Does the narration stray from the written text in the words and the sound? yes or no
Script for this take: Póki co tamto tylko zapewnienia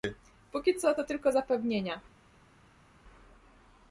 yes